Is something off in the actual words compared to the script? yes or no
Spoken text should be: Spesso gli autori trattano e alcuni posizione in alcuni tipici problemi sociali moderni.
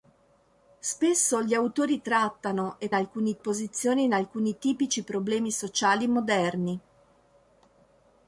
no